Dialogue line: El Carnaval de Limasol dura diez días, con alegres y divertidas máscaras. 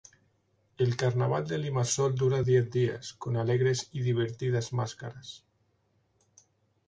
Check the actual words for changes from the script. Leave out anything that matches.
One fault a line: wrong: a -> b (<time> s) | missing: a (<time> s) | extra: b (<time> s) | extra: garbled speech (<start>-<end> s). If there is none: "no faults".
no faults